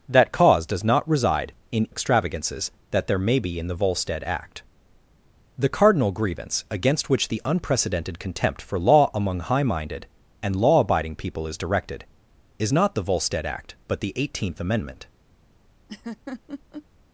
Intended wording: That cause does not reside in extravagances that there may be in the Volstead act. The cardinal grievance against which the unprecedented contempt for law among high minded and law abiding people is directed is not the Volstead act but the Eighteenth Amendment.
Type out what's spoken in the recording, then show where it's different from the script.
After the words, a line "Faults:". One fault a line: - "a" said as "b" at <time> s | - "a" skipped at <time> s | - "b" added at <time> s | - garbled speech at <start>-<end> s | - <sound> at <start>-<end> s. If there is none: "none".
That cause does not reside in extravagances that there may be in the Volstead act. The cardinal grievance against which the unprecedented contempt for law among high minded and law abiding people is directed is not the Volstead act but the Eighteenth Amendment.
Faults:
- laugh at 15.9-16.9 s